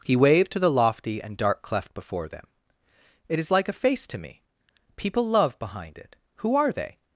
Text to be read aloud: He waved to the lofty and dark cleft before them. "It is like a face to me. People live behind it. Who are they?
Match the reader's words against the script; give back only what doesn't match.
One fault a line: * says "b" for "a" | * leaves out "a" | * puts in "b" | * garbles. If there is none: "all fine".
* says "love" for "live"